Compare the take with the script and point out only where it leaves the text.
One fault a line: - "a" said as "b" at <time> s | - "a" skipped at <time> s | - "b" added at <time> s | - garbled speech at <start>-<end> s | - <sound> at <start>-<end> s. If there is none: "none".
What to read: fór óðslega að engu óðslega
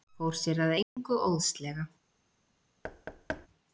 - "óðslega" said as "sér" at 0.4 s
- dropout at 0.8-1.0 s
- thud at 2.8-3.5 s